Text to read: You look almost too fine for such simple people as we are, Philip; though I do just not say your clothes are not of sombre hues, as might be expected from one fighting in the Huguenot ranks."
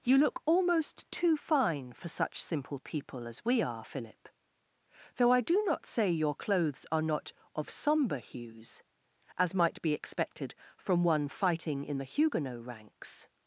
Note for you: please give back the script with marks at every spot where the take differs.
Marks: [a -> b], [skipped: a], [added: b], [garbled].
You look almost too fine for such simple people as we are, Philip; though I do [skipped: just] not say your clothes are not of sombre hues, as might be expected from one fighting in the Huguenot ranks."